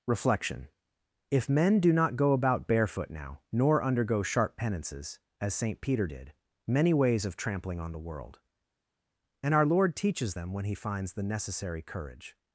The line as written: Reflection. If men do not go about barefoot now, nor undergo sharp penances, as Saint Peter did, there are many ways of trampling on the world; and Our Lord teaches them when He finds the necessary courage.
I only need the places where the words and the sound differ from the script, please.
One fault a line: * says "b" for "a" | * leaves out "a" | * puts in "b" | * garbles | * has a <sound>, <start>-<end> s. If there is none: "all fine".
* leaves out "there are"